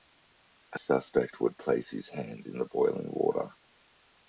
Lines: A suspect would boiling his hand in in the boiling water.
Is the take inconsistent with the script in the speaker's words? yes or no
yes